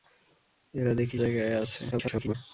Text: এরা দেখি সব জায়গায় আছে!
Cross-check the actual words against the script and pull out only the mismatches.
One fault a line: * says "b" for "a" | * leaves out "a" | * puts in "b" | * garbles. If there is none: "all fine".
* leaves out "সব"
* garbles